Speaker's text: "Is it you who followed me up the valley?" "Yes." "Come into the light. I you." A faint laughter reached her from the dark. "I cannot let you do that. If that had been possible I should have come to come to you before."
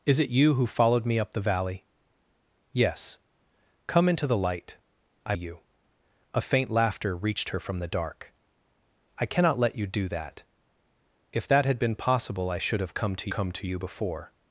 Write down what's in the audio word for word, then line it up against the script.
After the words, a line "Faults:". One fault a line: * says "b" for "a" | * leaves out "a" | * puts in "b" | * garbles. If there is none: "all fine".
"Is it you who followed me up the valley?" "Yes." "Come into the light. I you." A faint laughter reached her from the dark. "I cannot let you do that. If that had been possible I should have come to come to you before."
Faults:
all fine